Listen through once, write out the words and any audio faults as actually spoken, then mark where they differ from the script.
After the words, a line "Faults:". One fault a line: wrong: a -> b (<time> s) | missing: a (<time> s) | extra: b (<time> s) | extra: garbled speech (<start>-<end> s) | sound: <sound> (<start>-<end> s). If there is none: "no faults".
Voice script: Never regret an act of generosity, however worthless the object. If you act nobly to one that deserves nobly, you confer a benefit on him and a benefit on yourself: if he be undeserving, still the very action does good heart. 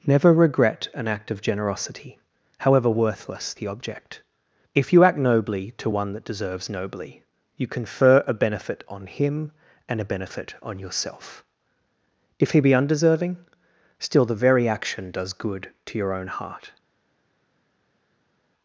Never regret an act of generosity, however worthless the object. If you act nobly to one that deserves nobly, you confer a benefit on him and a benefit on yourself: if he be undeserving, still the very action does good to your own heart.
Faults:
extra: to your own (15.9 s)